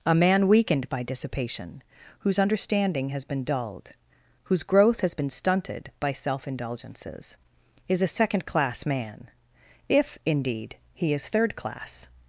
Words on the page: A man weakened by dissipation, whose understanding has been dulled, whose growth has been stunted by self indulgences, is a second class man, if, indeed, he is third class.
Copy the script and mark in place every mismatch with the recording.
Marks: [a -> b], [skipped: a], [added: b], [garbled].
A man weakened by dissipation, whose understanding has been dulled, whose growth has been stunted by self indulgences, is a second class man, if, indeed, he is third class.